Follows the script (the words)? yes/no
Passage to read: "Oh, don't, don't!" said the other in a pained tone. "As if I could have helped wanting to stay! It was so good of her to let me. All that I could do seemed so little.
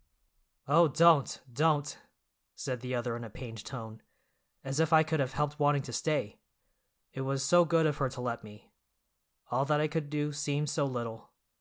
yes